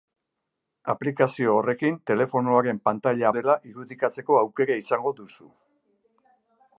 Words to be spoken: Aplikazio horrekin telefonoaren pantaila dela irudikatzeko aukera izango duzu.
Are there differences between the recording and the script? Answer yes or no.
no